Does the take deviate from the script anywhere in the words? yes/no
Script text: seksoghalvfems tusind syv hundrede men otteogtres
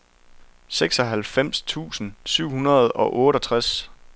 yes